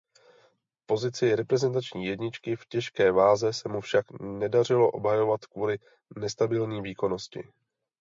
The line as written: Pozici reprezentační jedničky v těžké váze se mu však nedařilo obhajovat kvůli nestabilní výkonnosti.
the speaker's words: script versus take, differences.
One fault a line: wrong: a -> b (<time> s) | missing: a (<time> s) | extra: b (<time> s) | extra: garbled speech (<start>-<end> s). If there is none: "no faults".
no faults